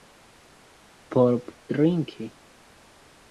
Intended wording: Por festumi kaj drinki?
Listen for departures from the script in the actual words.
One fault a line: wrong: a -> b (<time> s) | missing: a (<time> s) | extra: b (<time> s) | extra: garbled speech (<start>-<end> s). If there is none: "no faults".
missing: festumi kaj (1.4 s)